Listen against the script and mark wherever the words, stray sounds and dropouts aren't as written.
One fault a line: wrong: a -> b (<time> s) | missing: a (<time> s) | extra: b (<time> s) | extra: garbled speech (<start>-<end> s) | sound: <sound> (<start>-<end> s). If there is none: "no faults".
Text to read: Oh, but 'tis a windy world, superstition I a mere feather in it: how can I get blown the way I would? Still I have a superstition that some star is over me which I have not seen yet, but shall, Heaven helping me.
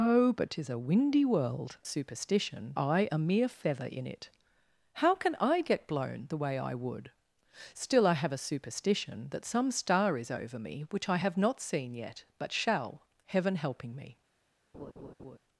sound: laugh (14.7-15.4 s)